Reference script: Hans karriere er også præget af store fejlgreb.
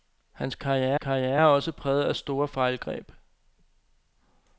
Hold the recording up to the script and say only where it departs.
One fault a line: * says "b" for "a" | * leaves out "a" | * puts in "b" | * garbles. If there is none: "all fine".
* puts in "karriere"